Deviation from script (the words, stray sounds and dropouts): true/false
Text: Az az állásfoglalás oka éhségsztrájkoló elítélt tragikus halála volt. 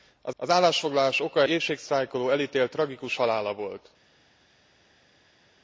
false